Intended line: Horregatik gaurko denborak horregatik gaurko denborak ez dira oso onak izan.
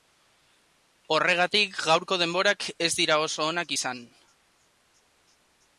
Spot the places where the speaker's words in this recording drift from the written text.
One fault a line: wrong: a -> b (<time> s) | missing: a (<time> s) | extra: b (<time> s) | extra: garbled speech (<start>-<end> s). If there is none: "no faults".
missing: horregatik gaurko denborak (2.7 s)